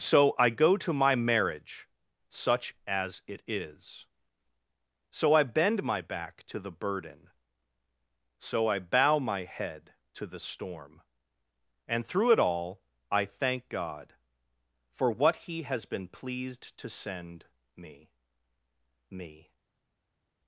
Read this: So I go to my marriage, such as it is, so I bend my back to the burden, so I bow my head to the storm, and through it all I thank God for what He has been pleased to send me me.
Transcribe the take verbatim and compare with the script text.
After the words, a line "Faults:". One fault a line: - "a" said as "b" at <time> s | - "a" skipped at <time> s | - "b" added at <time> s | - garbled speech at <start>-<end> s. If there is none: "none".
So I go to my marriage, such as it is, so I bend my back to the burden, so I bow my head to the storm, and through it all I thank God for what He has been pleased to send me me.
Faults:
none